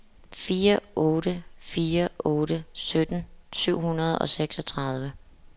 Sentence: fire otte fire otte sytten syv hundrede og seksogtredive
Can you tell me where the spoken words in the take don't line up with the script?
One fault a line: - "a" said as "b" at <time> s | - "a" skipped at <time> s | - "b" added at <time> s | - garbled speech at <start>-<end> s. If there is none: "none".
none